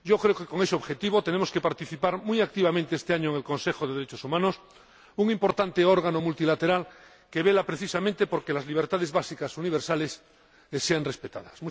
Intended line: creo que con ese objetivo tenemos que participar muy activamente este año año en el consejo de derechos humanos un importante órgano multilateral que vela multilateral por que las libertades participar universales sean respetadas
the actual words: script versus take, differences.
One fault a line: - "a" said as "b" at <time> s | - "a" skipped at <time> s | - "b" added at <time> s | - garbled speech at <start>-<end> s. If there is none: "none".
- "año" skipped at 3.3 s
- "multilateral" said as "precisamente" at 7.6 s
- "participar" said as "básicas" at 9.1 s